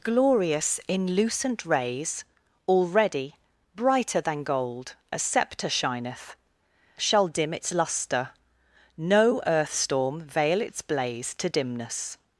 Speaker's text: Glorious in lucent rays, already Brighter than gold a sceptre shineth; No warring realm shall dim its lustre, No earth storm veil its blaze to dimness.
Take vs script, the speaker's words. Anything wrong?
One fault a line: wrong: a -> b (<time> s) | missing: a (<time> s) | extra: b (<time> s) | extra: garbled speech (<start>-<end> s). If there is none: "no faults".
missing: No warring realm (6.3 s)